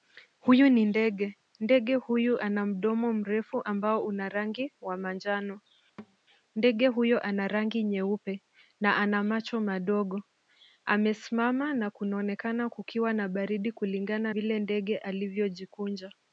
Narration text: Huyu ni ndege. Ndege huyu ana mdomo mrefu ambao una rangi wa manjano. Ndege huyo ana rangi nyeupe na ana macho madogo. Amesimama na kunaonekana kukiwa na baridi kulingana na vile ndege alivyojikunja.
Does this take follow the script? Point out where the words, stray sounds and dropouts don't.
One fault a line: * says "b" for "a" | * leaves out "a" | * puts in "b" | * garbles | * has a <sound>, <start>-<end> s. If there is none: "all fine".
* has a thud, 6.0-6.2 s
* leaves out "na"